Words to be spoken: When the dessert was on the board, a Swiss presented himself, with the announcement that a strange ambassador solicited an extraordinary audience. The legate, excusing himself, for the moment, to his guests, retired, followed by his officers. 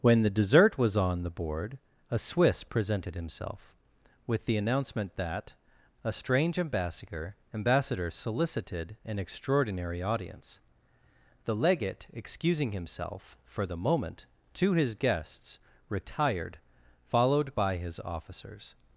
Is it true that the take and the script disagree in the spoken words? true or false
true